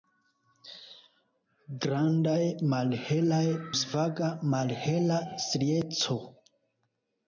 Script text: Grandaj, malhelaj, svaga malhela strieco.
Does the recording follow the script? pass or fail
pass